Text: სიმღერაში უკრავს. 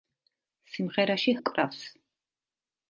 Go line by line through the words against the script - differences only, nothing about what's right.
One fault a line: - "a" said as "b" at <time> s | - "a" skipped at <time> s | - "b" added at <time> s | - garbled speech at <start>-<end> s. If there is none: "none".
none